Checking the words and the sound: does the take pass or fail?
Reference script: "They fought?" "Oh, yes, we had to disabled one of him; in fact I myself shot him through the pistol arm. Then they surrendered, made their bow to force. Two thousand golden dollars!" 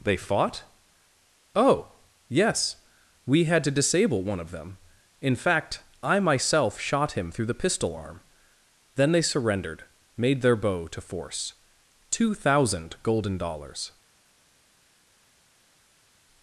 fail